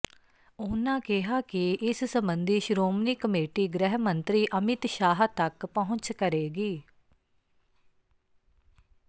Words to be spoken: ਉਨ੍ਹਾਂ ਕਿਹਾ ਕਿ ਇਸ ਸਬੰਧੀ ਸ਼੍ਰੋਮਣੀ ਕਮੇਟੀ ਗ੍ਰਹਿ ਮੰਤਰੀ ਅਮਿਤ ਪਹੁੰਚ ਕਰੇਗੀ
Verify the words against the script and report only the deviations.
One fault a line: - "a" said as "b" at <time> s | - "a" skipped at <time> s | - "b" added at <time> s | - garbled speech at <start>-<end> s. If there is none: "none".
- "ਸ਼ਾਹ ਤੱਕ" added at 4.9 s